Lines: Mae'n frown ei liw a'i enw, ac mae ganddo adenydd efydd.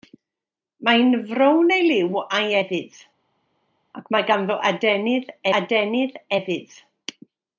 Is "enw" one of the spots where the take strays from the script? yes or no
yes